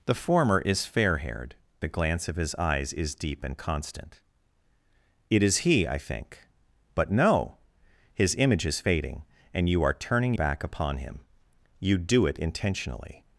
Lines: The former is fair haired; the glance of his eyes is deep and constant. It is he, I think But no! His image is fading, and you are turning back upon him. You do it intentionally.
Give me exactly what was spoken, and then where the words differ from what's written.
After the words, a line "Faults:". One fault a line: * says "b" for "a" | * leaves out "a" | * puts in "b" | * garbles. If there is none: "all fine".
The former is fair haired; the glance of his eyes is deep and constant. It is he, I think But no! His image is fading, and you are turning back upon him. You do it intentionally.
Faults:
all fine